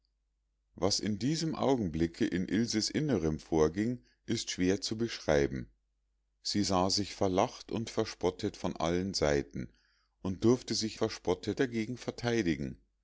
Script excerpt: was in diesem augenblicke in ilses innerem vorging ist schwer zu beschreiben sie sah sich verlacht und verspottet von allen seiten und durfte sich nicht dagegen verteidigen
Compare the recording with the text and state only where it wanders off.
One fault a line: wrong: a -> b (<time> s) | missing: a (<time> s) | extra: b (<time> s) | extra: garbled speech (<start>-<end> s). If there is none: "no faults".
wrong: nicht -> verspottet (10.9 s)